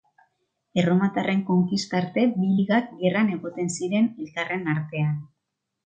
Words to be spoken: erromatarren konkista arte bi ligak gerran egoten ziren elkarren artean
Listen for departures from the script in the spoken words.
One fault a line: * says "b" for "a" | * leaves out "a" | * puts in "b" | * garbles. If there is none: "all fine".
all fine